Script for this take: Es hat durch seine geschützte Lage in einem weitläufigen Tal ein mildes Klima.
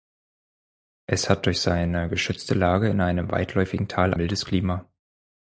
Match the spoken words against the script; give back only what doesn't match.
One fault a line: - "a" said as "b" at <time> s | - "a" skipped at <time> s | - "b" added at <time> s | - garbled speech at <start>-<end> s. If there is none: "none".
- "ein" skipped at 4.2 s